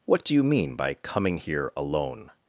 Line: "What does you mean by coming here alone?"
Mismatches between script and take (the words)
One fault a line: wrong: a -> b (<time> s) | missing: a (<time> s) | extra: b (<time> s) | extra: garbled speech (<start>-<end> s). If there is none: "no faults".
wrong: does -> do (0.2 s)